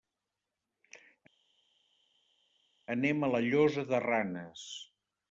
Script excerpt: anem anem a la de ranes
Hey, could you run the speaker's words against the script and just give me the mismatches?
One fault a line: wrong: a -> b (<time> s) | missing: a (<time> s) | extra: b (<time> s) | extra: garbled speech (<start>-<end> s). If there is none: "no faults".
missing: anem (3.2 s)
extra: llosa (3.5 s)